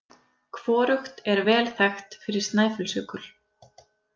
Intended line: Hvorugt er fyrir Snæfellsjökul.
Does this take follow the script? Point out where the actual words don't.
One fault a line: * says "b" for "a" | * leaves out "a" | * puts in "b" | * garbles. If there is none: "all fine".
* puts in "vel þekkt"